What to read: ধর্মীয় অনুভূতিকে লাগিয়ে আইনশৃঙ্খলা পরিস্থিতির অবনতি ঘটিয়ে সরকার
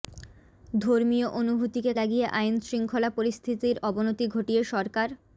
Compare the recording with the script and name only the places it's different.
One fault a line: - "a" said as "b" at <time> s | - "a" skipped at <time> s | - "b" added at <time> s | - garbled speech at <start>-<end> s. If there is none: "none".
none